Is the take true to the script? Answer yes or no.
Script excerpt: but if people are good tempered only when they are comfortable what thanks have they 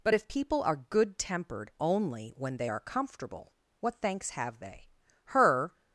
no